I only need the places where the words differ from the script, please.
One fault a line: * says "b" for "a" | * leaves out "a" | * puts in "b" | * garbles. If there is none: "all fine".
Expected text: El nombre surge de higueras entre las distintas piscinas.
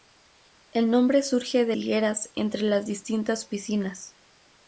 all fine